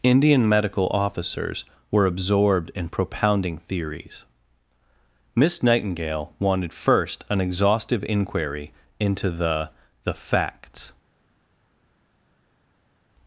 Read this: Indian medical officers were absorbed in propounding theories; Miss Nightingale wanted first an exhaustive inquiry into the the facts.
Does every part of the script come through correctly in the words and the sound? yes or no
yes